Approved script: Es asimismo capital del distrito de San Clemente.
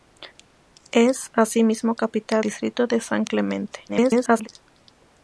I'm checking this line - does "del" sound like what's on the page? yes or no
no